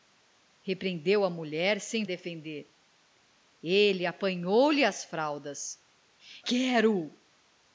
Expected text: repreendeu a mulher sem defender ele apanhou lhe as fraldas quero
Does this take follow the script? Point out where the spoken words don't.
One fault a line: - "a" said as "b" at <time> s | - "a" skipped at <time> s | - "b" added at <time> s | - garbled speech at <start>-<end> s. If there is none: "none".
none